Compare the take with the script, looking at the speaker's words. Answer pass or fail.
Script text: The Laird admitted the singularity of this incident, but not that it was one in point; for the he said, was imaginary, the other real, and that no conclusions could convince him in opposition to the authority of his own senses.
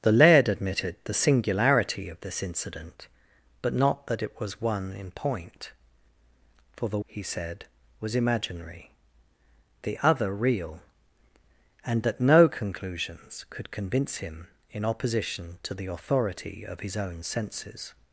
pass